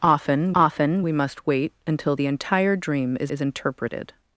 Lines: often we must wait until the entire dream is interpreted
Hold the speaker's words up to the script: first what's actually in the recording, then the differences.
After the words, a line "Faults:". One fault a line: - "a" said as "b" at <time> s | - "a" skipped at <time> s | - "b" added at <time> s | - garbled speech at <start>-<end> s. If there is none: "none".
often often we must wait until the entire dream is is interpreted
Faults:
- "often" added at 0.6 s
- "is" added at 3.3 s